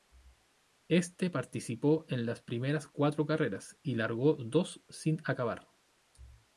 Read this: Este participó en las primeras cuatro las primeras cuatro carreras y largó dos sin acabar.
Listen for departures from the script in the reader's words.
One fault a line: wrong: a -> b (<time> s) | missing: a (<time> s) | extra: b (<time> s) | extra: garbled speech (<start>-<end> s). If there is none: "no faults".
missing: las primeras cuatro (3.3 s)